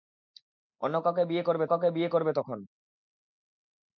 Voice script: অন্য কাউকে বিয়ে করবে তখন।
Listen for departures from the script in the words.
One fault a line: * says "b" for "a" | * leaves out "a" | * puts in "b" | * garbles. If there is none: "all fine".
* puts in "কাউকে বিয়ে করবে"